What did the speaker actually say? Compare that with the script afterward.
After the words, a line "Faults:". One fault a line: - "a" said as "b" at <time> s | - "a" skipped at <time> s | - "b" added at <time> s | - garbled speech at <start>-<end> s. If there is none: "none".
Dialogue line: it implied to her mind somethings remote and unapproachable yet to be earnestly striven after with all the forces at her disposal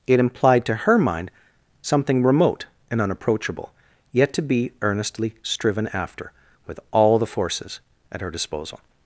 it implied to her mind something remote and unapproachable yet to be earnestly striven after with all the forces at her disposal
Faults:
- "somethings" said as "something" at 1.8 s